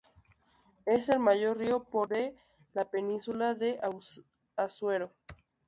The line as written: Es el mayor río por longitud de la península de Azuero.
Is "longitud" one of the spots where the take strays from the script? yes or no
yes